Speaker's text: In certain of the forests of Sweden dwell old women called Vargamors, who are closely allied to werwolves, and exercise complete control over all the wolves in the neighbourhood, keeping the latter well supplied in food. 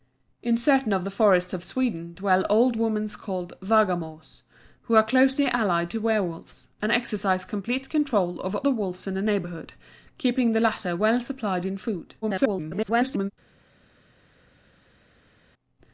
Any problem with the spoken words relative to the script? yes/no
yes